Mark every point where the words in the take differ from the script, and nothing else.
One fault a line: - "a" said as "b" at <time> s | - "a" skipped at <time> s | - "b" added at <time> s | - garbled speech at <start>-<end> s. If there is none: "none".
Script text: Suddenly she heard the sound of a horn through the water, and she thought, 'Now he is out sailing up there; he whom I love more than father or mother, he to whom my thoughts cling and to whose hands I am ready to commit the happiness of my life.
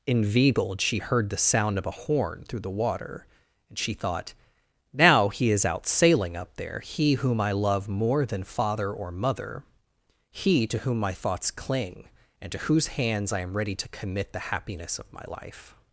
- "Suddenly" said as "Inveigled" at 0.1 s